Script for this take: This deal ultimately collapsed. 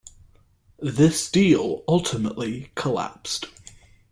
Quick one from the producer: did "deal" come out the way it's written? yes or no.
yes